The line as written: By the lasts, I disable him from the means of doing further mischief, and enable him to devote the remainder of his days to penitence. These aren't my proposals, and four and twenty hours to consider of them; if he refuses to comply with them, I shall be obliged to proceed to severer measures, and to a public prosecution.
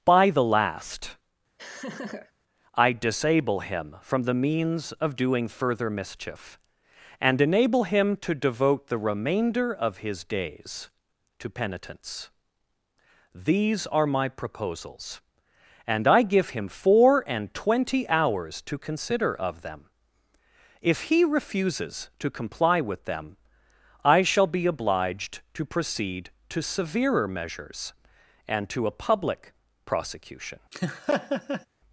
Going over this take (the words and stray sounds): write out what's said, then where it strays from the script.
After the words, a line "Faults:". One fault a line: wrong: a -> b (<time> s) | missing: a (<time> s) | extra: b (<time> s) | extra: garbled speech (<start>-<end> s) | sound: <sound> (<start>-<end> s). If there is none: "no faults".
By the last, I disable him from the means of doing further mischief, and enable him to devote the remainder of his days to penitence. These are my proposals, and I give him four and twenty hours to consider of them; if he refuses to comply with them, I shall be obliged to proceed to severer measures, and to a public prosecution.
Faults:
wrong: lasts -> last (0.4 s)
sound: laugh (1.6-2.3 s)
wrong: aren't -> are (13.9 s)
extra: I give him (16.1 s)
sound: laugh (30.7-31.7 s)